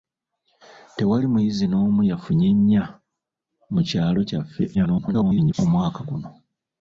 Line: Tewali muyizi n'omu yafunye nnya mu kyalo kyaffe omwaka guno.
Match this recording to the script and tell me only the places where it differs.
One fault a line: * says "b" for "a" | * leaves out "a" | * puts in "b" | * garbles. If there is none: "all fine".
* garbles